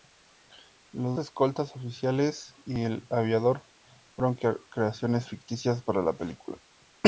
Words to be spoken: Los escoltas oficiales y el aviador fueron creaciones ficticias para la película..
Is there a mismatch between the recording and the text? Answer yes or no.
no